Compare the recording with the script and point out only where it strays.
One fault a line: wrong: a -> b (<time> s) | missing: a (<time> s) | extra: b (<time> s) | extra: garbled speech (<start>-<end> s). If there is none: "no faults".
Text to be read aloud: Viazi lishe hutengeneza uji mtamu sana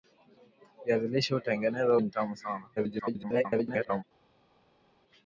missing: uji (2.0 s)
extra: garbled speech (2.8-4.0 s)